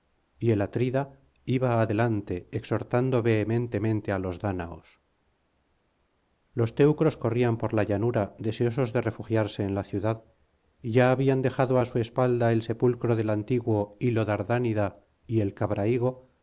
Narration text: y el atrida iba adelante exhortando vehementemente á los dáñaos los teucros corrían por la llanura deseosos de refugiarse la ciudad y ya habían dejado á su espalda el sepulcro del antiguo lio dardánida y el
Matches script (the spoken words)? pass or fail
fail